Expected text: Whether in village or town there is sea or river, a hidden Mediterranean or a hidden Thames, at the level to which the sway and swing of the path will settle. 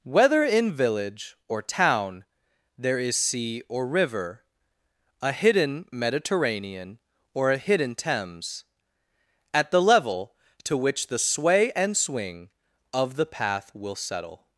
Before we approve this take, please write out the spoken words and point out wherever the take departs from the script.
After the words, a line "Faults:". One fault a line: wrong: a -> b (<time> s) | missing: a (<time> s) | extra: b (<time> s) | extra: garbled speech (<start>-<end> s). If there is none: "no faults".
Whether in village or town there is sea or river, a hidden Mediterranean or a hidden Thames, at the level to which the sway and swing of the path will settle.
Faults:
no faults